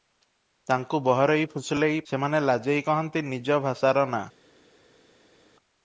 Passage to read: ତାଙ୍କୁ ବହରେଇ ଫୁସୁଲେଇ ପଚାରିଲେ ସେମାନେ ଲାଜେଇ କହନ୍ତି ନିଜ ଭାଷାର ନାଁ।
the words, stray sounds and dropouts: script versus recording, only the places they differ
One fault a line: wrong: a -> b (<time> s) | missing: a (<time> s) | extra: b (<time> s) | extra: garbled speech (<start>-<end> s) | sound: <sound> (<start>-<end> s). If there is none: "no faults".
missing: ପଚାରିଲେ (2.0 s)